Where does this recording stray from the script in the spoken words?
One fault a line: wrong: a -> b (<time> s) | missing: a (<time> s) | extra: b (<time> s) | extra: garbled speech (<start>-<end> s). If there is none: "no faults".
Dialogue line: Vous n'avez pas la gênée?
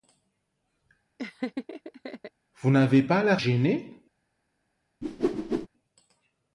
no faults